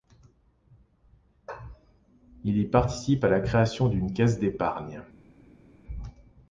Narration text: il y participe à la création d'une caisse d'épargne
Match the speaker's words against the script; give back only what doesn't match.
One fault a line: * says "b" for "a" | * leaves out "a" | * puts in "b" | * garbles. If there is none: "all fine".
all fine